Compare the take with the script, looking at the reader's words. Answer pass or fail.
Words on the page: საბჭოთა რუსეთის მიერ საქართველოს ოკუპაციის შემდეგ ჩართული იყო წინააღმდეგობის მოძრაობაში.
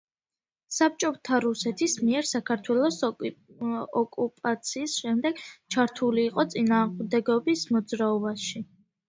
pass